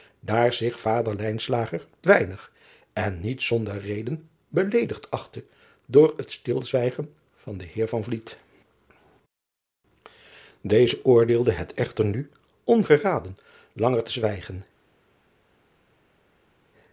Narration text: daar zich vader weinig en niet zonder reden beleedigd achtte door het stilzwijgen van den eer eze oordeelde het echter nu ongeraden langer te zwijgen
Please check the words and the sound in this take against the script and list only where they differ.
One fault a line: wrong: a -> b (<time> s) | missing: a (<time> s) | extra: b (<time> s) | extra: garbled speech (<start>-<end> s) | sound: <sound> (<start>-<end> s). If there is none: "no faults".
no faults